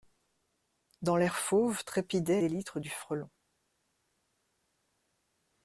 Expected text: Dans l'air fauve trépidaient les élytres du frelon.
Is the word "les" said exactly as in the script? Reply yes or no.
no